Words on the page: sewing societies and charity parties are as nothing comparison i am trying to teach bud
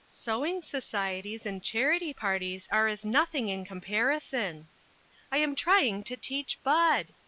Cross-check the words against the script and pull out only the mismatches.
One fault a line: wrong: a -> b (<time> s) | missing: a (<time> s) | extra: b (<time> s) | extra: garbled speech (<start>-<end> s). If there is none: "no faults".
extra: in (3.5 s)